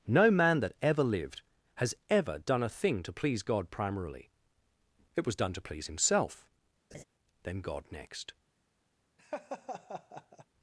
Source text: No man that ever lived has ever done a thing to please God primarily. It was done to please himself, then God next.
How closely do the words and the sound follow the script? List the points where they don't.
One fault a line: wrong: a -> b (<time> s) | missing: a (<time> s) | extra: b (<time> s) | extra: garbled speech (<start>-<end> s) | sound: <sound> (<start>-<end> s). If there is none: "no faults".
sound: laugh (6.9-7.0 s)
sound: laugh (9.2-10.5 s)